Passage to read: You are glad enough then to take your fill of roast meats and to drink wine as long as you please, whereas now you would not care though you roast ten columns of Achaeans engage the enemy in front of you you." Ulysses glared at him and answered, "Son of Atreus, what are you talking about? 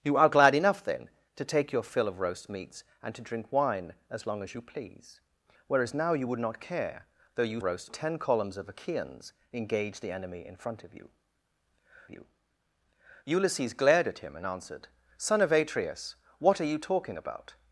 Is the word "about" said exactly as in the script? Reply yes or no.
yes